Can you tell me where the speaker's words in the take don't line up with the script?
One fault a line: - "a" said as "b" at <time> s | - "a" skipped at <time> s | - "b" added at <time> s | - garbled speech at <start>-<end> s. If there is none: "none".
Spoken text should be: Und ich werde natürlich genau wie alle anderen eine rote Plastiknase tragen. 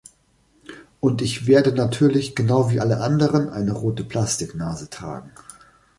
none